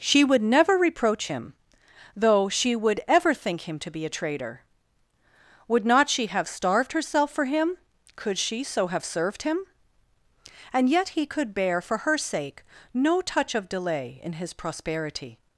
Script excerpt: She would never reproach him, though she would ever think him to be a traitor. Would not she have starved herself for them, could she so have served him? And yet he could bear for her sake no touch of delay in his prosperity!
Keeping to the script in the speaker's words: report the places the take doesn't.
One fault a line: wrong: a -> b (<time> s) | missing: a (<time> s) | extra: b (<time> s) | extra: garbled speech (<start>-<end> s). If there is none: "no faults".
wrong: them -> him (7.4 s)